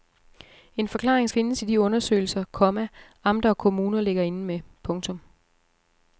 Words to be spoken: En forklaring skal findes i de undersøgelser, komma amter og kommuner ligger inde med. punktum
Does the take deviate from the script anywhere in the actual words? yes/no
yes